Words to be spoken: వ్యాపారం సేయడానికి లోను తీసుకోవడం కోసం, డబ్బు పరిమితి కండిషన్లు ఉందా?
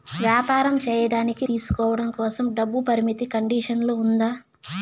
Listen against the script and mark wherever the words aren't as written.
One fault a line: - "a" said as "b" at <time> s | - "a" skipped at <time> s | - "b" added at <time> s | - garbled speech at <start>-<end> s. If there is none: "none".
- "లోను" skipped at 1.4 s